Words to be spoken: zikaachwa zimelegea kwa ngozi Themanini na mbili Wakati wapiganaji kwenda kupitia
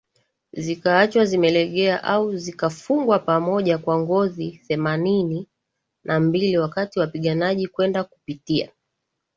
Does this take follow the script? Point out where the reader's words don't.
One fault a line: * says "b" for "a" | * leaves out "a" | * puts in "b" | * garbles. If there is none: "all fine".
* puts in "au zikafungwa pamoja"